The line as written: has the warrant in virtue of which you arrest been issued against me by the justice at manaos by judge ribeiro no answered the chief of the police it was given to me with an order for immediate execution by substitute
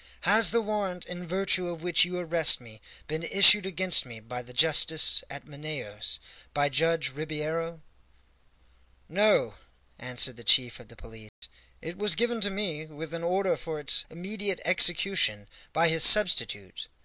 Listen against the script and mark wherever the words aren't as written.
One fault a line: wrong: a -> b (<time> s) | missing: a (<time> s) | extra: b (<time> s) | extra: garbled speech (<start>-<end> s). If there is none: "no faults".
extra: me (2.6 s)
extra: its (13.8 s)
extra: his (15.9 s)